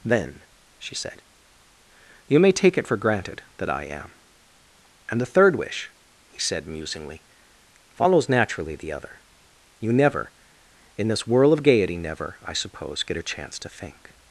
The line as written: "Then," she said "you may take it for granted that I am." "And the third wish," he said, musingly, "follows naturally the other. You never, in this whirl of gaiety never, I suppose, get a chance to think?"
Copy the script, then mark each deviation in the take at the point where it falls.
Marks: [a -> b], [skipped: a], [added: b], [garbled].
"Then," she said "you may take it for granted that I am." "And the third wish," he said, musingly, "follows naturally the other. You never, in this whirl of gaiety never, I suppose, get a chance to think?"